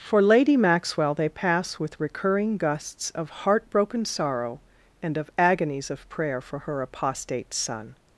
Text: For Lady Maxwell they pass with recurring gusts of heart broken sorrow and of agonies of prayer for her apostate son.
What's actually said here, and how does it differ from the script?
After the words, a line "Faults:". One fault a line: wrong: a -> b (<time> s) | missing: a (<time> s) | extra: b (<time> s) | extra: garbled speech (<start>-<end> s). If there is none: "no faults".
For Lady Maxwell they pass with recurring gusts of heart broken sorrow and of agonies of prayer for her apostate son.
Faults:
no faults